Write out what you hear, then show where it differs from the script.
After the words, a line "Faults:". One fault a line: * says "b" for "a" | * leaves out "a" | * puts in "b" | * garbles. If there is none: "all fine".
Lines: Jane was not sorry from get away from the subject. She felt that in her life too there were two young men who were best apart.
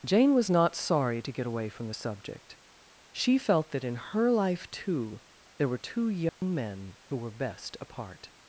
Jane was not sorry to get away from the subject. She felt that in her life too there were two young men who were best apart.
Faults:
* says "to" for "from"